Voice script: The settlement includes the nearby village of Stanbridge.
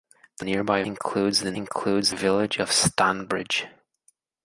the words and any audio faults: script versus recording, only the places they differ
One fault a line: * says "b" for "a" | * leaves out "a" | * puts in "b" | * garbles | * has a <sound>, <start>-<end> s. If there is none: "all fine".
* says "nearby" for "settlement"
* says "includes" for "nearby"